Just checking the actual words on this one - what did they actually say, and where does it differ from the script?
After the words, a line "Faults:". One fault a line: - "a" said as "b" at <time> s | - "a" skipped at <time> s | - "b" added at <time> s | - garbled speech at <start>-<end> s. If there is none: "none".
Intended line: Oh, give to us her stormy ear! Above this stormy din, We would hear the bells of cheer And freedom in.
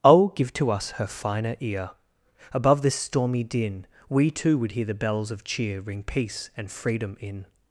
Oh, give to us her finer ear! Above this stormy din, We too would hear the bells of cheer Ring peace and freedom in.
Faults:
- "stormy" said as "finer" at 1.1 s
- "too" added at 4.3 s
- "Ring peace" added at 5.8 s